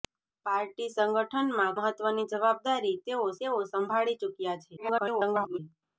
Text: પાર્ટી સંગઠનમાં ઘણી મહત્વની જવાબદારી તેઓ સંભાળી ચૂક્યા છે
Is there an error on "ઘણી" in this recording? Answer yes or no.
yes